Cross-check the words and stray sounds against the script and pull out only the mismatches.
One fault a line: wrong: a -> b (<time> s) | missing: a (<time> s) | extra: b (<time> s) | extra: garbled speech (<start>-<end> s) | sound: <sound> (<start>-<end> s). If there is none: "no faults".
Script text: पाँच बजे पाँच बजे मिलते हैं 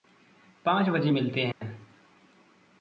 missing: पाँच बजे (1.1 s)
sound: dropout (1.5-1.6 s)